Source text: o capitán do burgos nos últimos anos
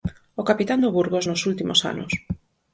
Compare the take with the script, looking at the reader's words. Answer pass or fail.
pass